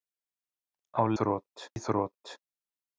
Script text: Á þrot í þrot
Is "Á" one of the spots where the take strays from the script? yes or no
no